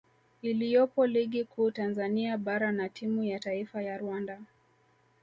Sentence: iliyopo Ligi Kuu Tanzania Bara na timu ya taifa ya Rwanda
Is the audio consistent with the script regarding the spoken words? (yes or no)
yes